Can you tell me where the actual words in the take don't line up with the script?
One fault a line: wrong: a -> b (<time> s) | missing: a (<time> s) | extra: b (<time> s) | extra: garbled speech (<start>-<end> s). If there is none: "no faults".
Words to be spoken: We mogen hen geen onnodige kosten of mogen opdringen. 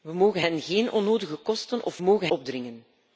no faults